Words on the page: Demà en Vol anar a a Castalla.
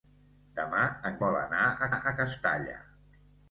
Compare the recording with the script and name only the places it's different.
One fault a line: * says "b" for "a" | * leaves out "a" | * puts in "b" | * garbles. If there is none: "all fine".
all fine